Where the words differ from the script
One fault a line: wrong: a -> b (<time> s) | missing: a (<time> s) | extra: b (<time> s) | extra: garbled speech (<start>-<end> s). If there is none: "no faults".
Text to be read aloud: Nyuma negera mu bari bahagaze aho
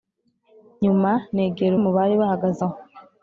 no faults